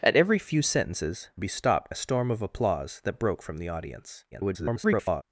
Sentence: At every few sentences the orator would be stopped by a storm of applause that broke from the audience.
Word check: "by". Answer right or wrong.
wrong